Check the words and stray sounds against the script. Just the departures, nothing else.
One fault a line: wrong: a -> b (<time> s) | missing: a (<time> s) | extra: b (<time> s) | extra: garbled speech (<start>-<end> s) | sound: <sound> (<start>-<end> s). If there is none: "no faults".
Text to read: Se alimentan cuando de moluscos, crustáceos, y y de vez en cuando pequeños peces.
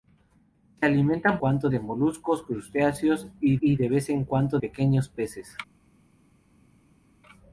no faults